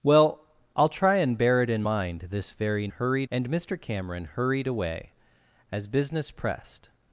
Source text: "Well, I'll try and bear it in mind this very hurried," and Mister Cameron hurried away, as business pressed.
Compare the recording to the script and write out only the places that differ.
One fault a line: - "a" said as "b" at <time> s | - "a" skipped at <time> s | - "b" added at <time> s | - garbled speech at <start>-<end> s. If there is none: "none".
none